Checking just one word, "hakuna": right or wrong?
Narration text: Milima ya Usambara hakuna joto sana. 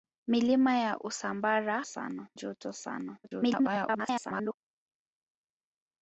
wrong